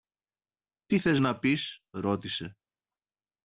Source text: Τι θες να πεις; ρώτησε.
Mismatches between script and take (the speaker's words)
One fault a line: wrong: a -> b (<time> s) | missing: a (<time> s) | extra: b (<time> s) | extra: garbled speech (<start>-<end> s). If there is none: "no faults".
no faults